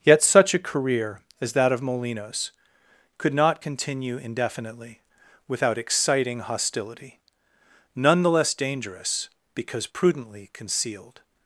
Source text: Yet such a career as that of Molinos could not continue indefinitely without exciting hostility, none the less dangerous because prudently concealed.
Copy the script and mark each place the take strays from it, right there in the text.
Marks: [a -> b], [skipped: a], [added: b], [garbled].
Yet such a career as that of Molinos could not continue indefinitely without exciting hostility, none the less dangerous because prudently concealed.